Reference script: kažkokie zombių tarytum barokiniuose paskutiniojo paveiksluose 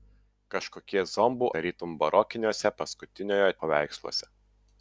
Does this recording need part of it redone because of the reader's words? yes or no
no